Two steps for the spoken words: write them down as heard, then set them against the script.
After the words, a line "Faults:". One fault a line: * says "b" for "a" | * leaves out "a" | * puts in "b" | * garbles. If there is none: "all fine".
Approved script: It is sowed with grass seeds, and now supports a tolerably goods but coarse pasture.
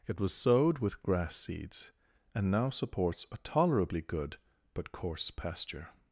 It was sowed with grass seeds, and now supports a tolerably good but coarse pasture.
Faults:
* says "was" for "is"
* says "good" for "goods"